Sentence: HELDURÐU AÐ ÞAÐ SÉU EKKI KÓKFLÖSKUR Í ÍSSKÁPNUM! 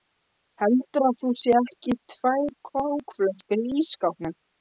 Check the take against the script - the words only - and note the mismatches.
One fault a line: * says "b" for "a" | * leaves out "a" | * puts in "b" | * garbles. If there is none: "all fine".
* puts in "TVÆR"